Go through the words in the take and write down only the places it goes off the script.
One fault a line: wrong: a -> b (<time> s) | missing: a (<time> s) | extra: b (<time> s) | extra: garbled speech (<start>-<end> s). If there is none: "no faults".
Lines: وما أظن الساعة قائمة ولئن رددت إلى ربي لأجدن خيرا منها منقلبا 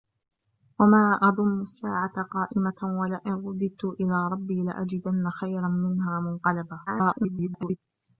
extra: garbled speech (6.9-7.8 s)